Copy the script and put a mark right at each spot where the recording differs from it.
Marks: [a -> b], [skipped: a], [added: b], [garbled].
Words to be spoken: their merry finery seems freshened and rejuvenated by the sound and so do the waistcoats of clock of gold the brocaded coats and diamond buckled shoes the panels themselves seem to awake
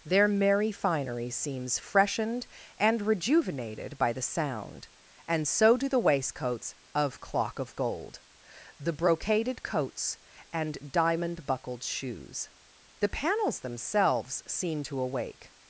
their merry finery seems freshened and rejuvenated by the sound and so do the waistcoats of clock of gold the brocaded coats and diamond buckled shoes the panels themselves seem to awake